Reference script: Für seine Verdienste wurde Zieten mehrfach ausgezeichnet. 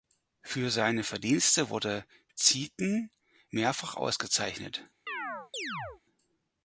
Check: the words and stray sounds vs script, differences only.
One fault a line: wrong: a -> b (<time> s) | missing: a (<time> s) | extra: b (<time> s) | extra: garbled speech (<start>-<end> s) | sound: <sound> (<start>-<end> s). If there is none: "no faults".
sound: chirp (5.1-6.0 s)